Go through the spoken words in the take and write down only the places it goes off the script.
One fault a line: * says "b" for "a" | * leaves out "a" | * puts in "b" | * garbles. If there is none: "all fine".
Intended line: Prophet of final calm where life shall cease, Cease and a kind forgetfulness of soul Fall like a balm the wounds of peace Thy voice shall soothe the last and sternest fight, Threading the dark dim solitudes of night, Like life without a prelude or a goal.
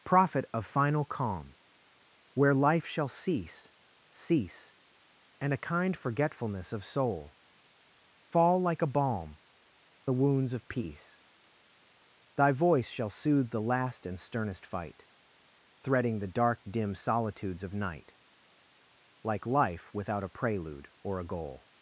all fine